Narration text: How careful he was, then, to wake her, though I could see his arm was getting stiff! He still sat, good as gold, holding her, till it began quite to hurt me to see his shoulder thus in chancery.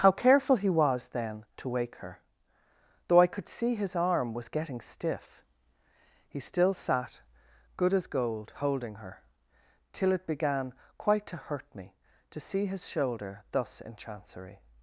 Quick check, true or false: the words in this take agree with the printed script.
true